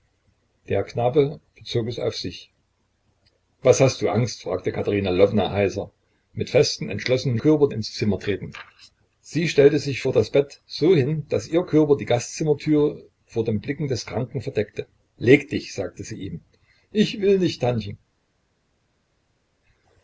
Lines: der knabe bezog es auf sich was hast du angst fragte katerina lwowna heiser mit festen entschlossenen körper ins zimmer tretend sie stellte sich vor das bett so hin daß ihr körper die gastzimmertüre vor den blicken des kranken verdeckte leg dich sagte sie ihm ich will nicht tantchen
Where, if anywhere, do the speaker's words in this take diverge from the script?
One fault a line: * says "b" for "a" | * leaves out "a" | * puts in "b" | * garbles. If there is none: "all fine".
all fine